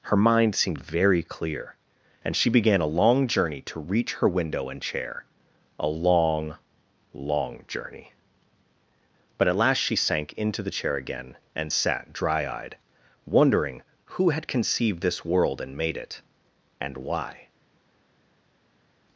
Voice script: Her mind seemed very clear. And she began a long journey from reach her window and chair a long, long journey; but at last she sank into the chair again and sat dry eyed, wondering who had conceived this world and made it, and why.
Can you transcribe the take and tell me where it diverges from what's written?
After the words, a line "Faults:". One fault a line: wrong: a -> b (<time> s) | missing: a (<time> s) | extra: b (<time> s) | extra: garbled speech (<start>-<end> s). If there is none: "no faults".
Her mind seemed very clear. And she began a long journey to reach her window and chair a long, long journey; but at last she sank into the chair again and sat dry eyed, wondering who had conceived this world and made it, and why.
Faults:
wrong: from -> to (3.6 s)